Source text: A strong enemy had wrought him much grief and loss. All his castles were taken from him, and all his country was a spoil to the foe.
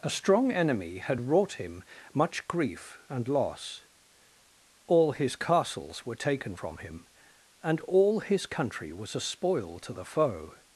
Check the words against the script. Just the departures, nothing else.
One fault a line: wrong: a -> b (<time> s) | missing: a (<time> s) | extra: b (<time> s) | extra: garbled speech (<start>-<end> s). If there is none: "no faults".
no faults